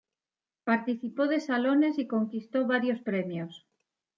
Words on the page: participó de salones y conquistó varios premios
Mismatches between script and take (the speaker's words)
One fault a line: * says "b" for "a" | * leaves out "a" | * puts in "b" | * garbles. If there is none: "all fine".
all fine